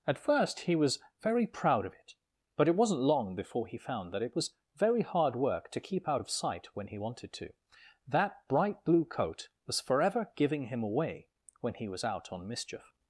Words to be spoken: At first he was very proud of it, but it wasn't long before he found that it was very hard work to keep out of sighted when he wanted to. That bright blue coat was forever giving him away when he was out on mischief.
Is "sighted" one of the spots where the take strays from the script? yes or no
yes